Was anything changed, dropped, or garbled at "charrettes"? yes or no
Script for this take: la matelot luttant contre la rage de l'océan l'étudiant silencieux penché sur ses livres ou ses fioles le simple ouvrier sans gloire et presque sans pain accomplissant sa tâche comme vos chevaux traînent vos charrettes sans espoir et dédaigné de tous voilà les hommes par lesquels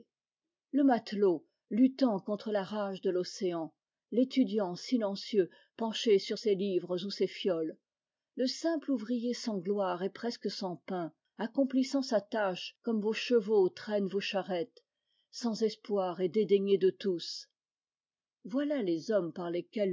no